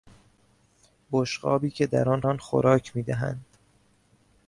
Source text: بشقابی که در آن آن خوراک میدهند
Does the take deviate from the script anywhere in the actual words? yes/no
no